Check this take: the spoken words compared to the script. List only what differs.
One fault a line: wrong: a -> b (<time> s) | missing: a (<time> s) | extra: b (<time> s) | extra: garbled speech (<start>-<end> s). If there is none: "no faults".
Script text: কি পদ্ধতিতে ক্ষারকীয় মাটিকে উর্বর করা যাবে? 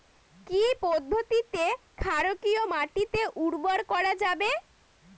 no faults